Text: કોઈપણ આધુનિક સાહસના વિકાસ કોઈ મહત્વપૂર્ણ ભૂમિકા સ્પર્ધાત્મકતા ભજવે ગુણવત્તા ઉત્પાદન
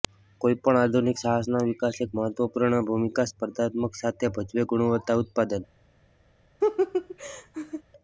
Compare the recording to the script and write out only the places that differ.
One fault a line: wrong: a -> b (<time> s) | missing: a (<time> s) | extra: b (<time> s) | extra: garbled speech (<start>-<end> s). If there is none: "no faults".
wrong: કોઈ -> એક (2.1 s)
extra: સાથે (4.0 s)